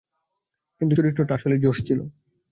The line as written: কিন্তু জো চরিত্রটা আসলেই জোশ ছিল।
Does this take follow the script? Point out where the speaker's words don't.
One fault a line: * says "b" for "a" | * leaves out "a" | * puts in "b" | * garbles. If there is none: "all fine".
* leaves out "জো"